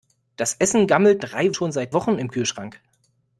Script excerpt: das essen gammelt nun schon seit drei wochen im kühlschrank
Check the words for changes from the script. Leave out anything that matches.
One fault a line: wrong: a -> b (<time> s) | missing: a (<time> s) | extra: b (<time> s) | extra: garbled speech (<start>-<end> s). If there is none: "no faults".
wrong: nun -> drei (1.2 s)
missing: drei (1.9 s)